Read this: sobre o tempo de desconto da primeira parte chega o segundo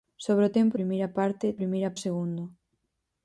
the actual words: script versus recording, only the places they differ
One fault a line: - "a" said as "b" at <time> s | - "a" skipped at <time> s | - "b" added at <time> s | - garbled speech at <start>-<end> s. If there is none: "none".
- "de desconto da" skipped at 0.8 s
- "chega" said as "primeira" at 1.6 s